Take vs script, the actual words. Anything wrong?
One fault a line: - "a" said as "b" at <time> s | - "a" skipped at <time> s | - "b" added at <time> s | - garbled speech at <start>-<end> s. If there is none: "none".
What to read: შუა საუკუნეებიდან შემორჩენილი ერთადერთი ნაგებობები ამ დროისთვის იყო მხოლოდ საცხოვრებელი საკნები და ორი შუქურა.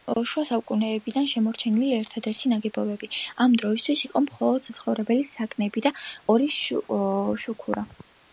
none